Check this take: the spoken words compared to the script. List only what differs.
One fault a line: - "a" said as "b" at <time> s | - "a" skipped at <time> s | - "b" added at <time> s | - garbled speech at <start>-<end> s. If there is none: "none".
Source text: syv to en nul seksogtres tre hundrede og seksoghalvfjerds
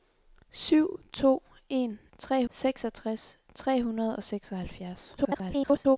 - "nul" said as "tre" at 2.2 s
- garbled speech at 5.2-6.0 s